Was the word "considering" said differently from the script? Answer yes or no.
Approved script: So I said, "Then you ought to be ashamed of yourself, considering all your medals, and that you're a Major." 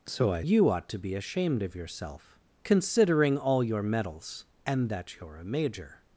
no